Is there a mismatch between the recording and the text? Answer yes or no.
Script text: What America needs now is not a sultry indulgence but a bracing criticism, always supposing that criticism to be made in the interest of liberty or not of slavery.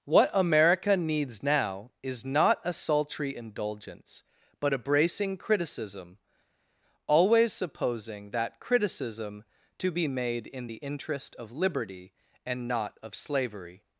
yes